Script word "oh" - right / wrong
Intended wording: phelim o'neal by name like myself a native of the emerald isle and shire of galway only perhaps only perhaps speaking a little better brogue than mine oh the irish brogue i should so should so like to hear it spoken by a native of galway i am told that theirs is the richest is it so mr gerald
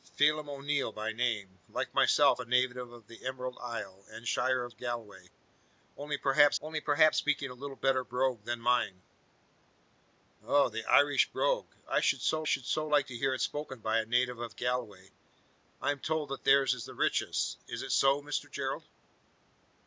right